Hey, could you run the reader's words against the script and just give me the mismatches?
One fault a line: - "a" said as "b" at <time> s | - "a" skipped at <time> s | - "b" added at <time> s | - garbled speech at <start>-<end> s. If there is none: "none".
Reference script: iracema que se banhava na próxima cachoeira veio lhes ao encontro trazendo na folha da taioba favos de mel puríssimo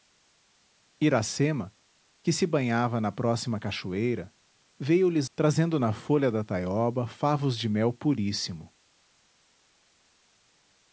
- "ao encontro" skipped at 5.3 s